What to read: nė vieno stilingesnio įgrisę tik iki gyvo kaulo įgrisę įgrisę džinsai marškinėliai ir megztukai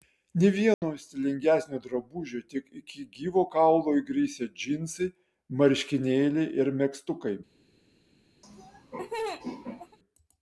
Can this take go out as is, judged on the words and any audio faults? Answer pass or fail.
fail